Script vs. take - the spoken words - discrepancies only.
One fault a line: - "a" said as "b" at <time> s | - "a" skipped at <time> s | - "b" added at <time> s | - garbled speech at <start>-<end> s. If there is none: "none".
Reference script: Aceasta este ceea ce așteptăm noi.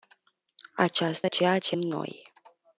- "este" skipped at 1.3 s
- "așteptăm" skipped at 1.8 s